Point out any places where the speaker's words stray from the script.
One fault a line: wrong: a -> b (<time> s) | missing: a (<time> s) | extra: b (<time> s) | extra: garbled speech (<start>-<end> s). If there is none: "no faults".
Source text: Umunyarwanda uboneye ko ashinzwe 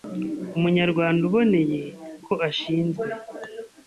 no faults